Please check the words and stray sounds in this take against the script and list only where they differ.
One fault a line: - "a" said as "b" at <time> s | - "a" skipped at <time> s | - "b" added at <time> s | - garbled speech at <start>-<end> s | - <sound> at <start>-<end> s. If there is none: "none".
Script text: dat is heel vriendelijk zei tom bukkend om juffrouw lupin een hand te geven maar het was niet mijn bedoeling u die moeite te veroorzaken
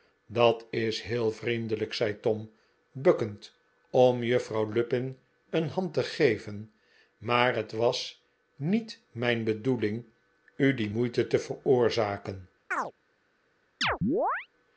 - chirp at 12.7-12.9 s
- chirp at 13.8-14.5 s